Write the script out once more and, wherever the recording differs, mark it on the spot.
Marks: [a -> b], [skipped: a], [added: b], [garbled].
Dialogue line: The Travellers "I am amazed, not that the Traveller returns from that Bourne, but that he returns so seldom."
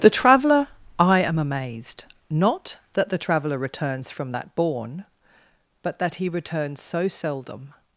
The [Travellers -> Traveller] "I am amazed, not that the Traveller returns from that Bourne, but that he returns so seldom."